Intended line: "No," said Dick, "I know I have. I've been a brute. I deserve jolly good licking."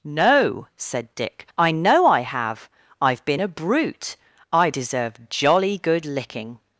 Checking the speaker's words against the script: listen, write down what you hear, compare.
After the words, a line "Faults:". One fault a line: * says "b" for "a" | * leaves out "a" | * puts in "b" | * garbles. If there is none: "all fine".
"No," said Dick, "I know I have. I've been a brute. I deserve jolly good licking."
Faults:
all fine